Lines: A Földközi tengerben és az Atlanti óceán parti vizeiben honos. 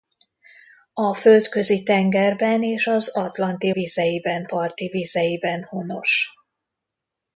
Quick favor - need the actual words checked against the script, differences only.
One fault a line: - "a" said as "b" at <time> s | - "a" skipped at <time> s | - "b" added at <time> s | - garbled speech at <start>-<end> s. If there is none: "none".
- "óceán" said as "vizeiben" at 3.7 s